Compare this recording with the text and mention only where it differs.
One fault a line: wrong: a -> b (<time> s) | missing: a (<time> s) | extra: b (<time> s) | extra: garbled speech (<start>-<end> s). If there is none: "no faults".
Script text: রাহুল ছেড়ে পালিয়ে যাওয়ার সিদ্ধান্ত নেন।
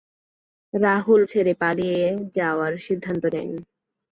no faults